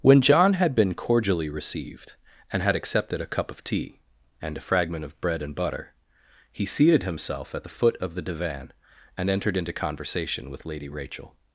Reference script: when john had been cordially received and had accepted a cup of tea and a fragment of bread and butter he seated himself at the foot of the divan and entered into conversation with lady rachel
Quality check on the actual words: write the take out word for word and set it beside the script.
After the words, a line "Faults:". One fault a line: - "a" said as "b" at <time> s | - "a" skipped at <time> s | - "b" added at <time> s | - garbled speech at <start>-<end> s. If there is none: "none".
when john had been cordially received and had accepted a cup of tea and a fragment of bread and butter he seated himself at the foot of the divan and entered into conversation with lady rachel
Faults:
none